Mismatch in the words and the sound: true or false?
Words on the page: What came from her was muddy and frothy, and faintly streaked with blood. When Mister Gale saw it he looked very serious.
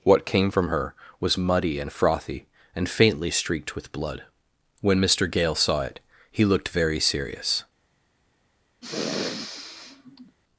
true